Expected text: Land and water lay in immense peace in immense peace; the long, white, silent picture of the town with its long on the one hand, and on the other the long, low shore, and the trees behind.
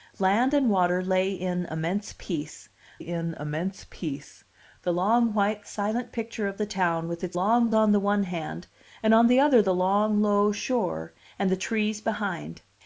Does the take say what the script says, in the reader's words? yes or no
yes